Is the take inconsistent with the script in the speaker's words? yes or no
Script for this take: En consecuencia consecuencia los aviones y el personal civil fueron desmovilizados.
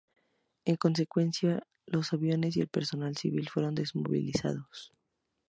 yes